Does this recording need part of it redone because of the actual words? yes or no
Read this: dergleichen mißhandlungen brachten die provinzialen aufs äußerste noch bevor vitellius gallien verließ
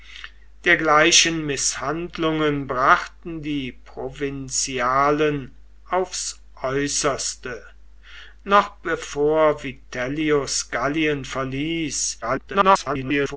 yes